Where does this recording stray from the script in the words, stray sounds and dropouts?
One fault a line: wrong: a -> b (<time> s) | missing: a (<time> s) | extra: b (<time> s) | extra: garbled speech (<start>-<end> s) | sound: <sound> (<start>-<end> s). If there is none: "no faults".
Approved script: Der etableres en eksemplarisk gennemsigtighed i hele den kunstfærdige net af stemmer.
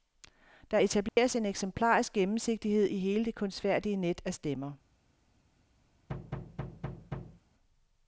sound: dropout (1.1-1.2 s)
wrong: den -> det (3.2 s)
sound: thud (6.1-7.4 s)